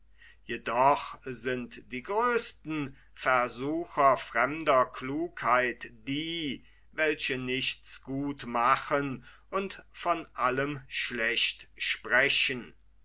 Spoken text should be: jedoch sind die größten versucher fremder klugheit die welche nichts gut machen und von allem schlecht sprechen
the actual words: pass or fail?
pass